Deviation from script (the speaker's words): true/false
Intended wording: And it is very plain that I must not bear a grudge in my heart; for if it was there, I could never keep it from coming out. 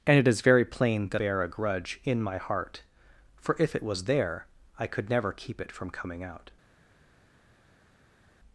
true